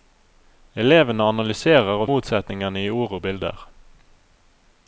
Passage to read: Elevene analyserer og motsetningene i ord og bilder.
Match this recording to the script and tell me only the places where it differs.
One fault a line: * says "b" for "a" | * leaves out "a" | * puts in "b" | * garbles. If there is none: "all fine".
all fine